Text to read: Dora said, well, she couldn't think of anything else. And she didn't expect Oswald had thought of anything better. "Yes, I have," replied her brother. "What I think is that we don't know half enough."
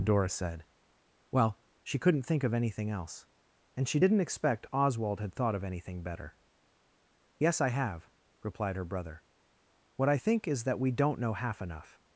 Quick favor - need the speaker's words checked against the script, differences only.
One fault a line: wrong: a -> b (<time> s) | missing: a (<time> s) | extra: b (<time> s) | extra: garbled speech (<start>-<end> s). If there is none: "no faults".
no faults